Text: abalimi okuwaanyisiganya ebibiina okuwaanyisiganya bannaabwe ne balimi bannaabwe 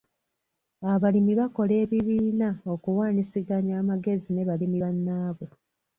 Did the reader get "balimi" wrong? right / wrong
right